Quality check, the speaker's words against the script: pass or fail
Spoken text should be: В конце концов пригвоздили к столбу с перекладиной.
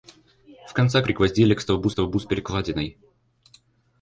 fail